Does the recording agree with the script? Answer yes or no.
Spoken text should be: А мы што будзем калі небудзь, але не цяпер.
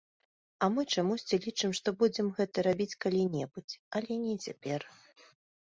no